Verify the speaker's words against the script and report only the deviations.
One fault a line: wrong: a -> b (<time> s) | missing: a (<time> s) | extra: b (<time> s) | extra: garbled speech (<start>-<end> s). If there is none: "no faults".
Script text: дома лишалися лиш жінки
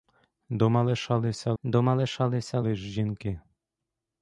extra: дома лишалися (1.6 s)